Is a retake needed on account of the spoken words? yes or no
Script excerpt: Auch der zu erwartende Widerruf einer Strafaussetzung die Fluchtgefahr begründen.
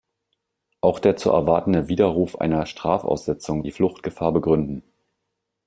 no